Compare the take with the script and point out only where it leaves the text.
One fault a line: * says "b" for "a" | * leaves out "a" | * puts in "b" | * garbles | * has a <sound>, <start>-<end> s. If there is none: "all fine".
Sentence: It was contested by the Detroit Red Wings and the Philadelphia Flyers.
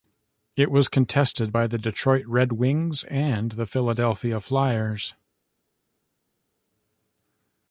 all fine